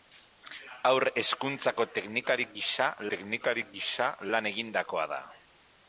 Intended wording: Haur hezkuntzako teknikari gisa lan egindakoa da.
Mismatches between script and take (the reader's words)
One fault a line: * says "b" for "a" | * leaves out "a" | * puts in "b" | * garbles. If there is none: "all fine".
* puts in "teknikari gisa"